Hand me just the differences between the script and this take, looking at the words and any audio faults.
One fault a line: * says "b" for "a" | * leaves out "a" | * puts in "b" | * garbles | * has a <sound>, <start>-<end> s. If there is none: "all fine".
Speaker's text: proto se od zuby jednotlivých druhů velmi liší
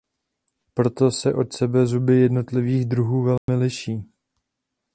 * puts in "sebe"
* has a dropout, 3.4-3.5 s